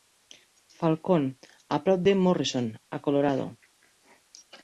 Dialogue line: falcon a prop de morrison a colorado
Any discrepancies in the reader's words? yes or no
no